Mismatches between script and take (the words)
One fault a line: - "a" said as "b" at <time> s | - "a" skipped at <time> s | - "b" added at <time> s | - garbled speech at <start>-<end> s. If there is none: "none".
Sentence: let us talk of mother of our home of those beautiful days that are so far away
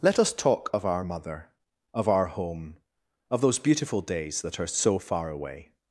- "our" added at 0.8 s